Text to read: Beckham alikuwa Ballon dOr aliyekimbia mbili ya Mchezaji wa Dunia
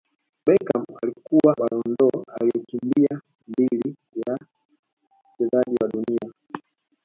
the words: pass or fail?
pass